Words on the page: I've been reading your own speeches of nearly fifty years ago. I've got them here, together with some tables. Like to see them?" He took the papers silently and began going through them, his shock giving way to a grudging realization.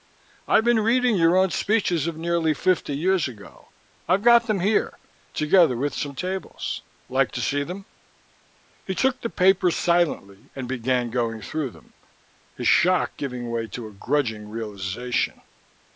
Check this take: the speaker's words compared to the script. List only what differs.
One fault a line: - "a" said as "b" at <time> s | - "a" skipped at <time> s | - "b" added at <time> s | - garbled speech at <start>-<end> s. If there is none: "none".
none